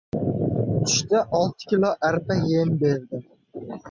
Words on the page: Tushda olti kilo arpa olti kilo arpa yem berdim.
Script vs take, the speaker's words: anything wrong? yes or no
yes